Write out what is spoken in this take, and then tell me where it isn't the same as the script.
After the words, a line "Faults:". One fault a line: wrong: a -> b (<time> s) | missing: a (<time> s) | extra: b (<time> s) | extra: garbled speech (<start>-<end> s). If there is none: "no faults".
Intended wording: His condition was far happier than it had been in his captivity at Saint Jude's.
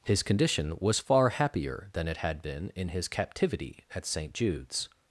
His condition was far happier than it had been in his captivity at Saint Jude's.
Faults:
no faults